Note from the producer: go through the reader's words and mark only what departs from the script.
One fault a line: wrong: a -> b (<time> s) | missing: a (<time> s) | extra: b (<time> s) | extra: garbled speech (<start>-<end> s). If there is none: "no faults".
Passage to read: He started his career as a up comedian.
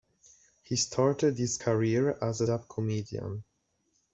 no faults